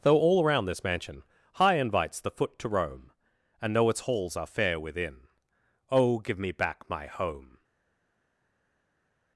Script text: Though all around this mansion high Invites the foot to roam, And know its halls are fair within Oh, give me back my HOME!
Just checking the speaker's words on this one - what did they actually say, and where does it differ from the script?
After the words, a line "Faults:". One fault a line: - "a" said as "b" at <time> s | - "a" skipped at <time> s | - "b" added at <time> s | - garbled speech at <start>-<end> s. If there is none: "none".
Though all around this mansion high Invites the foot to roam, And know its halls are fair within Oh, give me back my HOME!
Faults:
none